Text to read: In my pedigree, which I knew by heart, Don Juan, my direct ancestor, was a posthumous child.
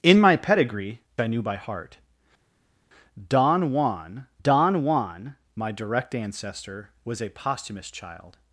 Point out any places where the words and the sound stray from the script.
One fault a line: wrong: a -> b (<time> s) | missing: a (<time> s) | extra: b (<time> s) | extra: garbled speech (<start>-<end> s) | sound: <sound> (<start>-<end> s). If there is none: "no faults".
missing: which (1.0 s)
extra: Don Juan (4.4 s)